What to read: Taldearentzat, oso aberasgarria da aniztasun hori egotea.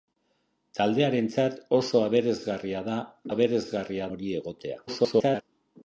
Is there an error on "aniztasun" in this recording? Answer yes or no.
yes